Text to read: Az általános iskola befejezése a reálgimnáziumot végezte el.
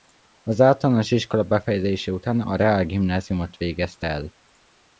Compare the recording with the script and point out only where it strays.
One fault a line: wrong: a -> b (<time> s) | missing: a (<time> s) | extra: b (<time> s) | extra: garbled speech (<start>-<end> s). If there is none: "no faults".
extra: után (2.1 s)